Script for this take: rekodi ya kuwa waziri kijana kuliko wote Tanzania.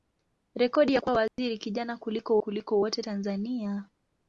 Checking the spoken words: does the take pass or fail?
fail